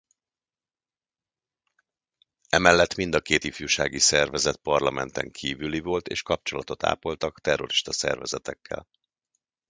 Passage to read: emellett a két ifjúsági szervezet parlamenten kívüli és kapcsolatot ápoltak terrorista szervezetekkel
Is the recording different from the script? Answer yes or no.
yes